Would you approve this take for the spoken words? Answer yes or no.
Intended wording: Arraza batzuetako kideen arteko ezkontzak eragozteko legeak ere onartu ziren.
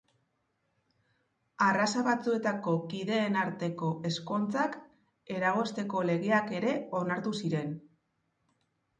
yes